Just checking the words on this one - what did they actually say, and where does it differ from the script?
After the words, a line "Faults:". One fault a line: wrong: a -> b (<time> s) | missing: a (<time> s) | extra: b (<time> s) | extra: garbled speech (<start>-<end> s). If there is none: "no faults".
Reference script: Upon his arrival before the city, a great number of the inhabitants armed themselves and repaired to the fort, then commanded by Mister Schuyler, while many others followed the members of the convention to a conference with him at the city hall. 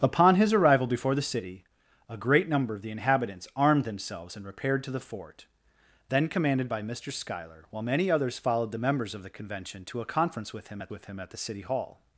Upon his arrival before the city, a great number of the inhabitants armed themselves and repaired to the fort, then commanded by Mister Schuyler, while many others followed the members of the convention to a conference with him at with him at the city hall.
Faults:
extra: with him at (10.9 s)